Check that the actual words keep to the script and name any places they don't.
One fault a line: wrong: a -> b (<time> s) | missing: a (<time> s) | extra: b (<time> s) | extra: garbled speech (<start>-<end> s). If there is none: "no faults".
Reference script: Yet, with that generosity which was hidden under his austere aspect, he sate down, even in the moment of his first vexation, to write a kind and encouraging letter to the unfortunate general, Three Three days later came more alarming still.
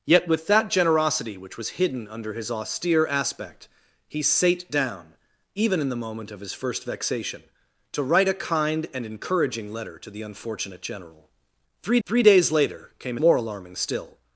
no faults